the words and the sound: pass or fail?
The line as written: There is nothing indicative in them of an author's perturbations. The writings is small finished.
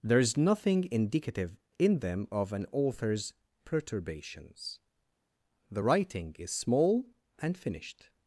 fail